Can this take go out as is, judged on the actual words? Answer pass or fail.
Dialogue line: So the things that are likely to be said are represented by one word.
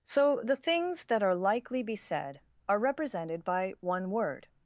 fail